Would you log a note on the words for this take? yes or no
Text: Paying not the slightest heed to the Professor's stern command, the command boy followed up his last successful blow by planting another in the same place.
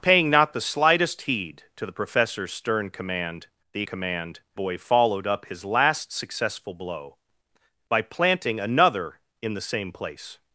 no